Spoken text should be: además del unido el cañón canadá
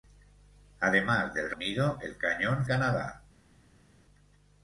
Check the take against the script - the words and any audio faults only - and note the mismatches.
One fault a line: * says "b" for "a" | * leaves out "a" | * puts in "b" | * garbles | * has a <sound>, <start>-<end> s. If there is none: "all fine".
all fine